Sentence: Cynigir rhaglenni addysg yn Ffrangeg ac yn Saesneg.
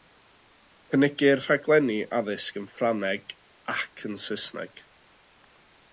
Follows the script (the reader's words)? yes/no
yes